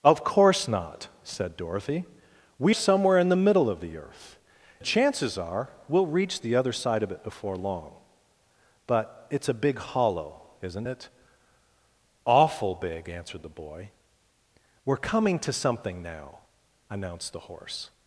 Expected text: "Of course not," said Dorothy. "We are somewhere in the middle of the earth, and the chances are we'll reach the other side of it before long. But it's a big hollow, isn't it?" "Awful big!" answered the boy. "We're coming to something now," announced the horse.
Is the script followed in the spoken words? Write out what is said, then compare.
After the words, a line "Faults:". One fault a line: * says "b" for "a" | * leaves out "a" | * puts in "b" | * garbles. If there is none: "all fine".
"Of course not," said Dorothy. "We somewhere in the middle of the earth, the chances are we'll reach the other side of it before long. But it's a big hollow, isn't it?" "Awful big!" answered the boy. "We're coming to something now," announced the horse.
Faults:
* leaves out "are"
* leaves out "and"